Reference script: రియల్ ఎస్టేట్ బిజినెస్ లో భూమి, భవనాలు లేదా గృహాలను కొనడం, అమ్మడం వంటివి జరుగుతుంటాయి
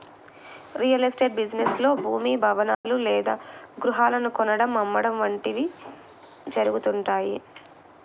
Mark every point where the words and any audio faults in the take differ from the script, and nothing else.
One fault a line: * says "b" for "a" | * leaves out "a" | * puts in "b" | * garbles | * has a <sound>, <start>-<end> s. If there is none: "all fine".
* has a dropout, 2.7-2.8 s